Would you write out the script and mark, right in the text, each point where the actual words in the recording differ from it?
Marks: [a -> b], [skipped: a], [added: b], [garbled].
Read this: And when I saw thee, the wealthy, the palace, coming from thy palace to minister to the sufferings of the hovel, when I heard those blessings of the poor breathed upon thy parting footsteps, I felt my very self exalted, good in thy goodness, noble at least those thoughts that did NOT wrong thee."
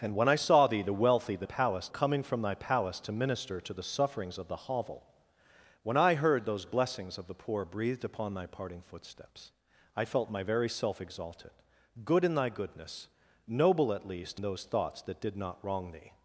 And when I saw thee, the wealthy, the palace, coming from thy palace to minister to the sufferings of the hovel, when I heard those blessings of the poor breathed upon thy parting footsteps, I felt my very self exalted, good in thy goodness, noble at least those thoughts that did NOT wrong thee."